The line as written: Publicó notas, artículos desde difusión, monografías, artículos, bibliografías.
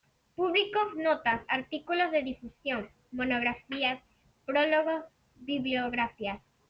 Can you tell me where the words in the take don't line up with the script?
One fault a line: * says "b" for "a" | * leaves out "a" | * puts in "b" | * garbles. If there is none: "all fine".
* says "de" for "desde"
* says "prólogos" for "artículos"